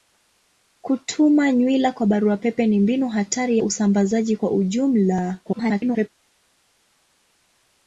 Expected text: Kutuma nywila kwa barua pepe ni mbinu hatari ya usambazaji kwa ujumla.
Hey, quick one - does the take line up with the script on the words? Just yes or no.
no